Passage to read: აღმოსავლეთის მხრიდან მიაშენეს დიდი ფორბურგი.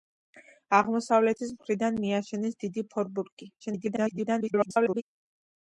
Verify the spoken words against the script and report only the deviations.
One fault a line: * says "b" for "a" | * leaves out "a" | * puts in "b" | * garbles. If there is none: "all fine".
* garbles